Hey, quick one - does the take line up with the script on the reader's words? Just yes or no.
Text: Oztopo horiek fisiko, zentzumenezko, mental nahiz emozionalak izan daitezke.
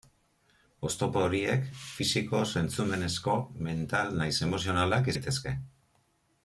no